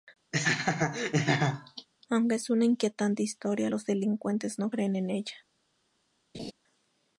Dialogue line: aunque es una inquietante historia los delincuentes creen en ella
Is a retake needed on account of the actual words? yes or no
yes